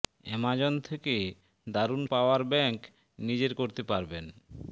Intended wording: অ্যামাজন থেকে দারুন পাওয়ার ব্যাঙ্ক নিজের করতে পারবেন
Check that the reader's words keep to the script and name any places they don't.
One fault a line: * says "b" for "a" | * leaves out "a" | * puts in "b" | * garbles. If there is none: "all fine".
all fine